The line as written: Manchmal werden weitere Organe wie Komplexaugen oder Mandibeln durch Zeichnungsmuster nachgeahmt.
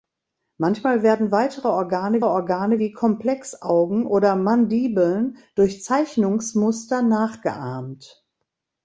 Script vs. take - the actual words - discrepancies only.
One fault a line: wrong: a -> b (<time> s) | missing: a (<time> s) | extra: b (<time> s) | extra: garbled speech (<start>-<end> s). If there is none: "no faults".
extra: Organe (2.2 s)